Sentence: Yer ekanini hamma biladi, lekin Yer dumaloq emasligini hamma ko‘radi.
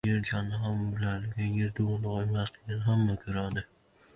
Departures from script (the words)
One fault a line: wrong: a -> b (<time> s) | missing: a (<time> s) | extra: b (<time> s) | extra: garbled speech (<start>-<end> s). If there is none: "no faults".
no faults